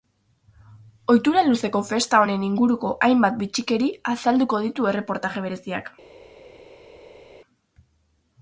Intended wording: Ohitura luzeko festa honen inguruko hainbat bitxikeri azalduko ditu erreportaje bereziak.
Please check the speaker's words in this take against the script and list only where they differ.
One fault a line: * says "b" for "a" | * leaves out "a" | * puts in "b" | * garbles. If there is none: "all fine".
all fine